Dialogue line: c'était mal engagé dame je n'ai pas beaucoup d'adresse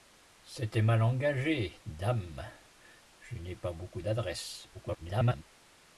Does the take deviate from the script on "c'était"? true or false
false